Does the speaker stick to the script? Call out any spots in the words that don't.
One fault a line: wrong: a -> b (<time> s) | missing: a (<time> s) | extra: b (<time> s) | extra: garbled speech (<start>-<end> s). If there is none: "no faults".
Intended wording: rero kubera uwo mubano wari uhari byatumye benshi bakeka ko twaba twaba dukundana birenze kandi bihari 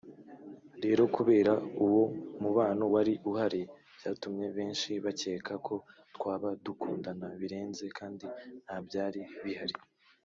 missing: twaba (6.5 s)
extra: ntabyari (8.6 s)